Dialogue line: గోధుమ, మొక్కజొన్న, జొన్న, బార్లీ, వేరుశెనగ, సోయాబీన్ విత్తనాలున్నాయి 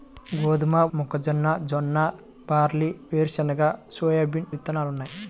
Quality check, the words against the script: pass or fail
pass